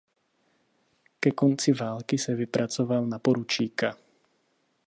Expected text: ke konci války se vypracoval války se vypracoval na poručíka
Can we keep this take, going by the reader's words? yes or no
no